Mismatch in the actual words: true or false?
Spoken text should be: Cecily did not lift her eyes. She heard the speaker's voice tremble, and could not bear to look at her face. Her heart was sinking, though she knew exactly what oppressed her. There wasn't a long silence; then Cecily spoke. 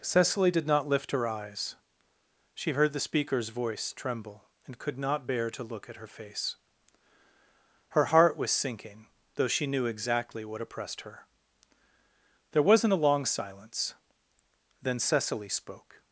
false